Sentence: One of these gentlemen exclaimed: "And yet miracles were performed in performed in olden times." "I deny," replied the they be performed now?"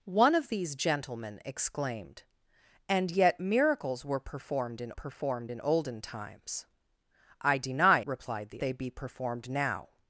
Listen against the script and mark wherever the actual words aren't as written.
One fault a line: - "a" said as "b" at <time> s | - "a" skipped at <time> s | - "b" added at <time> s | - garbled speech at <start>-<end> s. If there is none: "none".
none